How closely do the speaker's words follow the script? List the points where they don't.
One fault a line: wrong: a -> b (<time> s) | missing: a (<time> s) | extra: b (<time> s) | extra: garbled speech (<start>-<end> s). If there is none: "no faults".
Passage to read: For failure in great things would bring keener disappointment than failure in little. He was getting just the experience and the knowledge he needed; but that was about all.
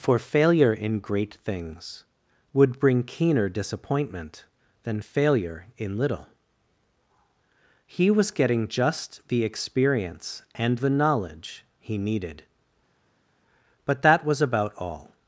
no faults